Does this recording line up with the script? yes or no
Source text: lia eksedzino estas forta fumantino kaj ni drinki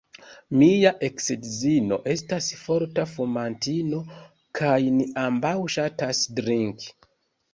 no